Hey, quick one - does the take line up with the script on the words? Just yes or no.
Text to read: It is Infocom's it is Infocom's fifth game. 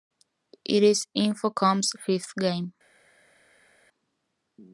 no